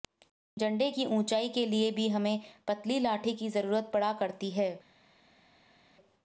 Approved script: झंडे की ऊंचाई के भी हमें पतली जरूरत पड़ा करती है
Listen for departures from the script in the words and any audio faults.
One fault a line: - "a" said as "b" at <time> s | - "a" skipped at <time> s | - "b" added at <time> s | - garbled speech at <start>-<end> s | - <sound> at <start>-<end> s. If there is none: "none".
- "लिए" added at 1.7 s
- "लाठी की" added at 3.0 s